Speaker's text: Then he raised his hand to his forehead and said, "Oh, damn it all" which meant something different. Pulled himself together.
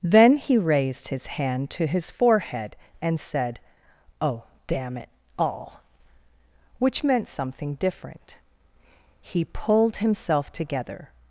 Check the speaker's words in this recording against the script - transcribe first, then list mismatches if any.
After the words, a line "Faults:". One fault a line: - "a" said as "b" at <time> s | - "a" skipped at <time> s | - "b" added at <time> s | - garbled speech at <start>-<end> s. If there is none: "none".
Then he raised his hand to his forehead and said, "Oh, damn it all" which meant something different. He pulled himself together.
Faults:
- "He" added at 9.2 s